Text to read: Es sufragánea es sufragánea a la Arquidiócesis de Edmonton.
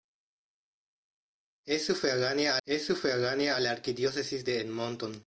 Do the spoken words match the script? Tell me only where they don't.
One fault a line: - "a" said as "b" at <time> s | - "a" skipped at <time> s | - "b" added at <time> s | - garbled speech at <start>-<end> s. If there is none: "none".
none